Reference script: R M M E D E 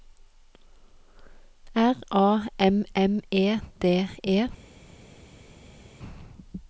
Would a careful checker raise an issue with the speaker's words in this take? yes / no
yes